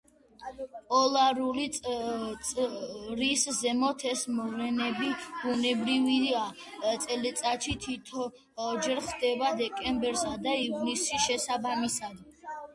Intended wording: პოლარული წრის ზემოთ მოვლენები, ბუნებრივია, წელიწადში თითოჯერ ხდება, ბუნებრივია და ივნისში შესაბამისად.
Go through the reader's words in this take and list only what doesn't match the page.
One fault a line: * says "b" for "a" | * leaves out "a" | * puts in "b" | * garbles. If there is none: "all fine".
* puts in "ეს"
* says "დეკემბერსა" for "ბუნებრივია"